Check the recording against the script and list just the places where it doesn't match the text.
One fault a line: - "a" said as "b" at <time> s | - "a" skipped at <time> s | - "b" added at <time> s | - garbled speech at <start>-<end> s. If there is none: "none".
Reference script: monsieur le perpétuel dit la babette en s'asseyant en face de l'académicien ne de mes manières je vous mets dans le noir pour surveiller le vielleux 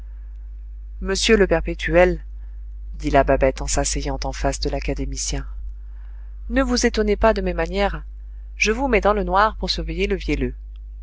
- "vous étonnez pas" added at 6.6 s